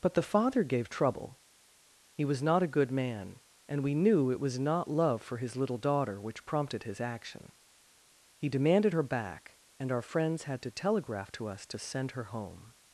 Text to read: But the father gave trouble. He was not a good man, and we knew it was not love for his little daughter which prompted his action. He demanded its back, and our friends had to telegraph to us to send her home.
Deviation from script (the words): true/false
true